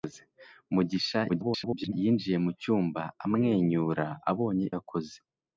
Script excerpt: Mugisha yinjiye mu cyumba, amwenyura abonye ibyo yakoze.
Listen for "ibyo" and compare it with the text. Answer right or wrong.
wrong